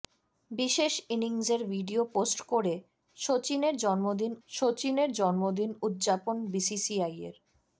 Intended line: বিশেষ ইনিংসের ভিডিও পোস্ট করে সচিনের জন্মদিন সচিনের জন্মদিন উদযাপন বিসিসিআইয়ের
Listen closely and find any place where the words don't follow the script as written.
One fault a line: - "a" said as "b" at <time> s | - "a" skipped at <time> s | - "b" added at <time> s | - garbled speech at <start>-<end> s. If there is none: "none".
none